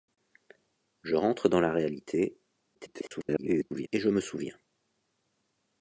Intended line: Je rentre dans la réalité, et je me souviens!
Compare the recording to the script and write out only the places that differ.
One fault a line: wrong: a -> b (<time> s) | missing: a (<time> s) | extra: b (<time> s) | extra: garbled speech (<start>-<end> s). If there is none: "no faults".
extra: garbled speech (2.7-3.9 s)